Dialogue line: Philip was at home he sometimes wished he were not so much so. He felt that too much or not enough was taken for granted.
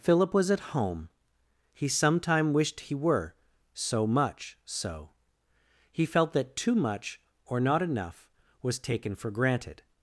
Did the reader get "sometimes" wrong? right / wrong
wrong